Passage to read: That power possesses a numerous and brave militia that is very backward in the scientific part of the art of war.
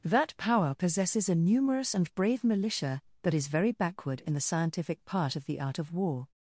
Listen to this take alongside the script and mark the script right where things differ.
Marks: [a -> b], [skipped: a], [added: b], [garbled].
That power possesses a numerous and brave militia that is very backward in the scientific part of the art of war.